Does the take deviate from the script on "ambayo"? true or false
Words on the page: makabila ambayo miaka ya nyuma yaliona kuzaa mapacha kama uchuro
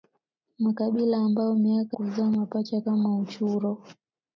false